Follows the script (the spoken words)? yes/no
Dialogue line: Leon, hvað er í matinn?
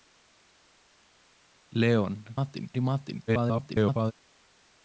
no